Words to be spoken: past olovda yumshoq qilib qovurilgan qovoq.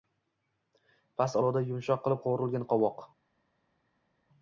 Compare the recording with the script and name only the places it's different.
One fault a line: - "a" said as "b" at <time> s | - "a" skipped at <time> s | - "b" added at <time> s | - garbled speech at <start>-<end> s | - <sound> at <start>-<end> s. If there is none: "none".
none